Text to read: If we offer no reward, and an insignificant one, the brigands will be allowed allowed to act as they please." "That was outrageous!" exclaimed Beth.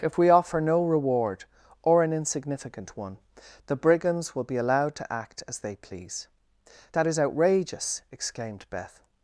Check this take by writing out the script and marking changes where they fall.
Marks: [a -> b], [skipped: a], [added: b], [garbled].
If we offer no reward, [and -> or] an insignificant one, the brigands will be allowed [skipped: allowed] to act as they please." "That [was -> is] outrageous!" exclaimed Beth.